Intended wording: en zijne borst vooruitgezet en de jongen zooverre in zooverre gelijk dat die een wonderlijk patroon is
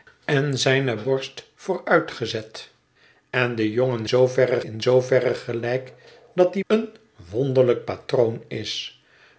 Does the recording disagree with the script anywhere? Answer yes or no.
no